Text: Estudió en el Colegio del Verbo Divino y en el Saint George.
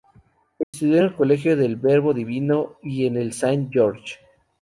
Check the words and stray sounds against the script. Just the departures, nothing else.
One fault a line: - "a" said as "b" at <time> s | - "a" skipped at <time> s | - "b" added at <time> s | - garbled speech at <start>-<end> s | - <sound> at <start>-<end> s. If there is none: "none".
- dropout at 0.6-0.7 s